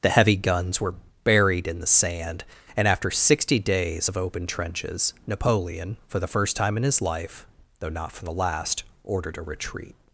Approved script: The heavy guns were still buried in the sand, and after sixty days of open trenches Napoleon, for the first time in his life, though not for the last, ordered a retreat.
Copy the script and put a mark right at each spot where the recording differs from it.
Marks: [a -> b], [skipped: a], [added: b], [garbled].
The heavy guns were [skipped: still] buried in the sand, and after sixty days of open trenches Napoleon, for the first time in his life, though not for the last, ordered a retreat.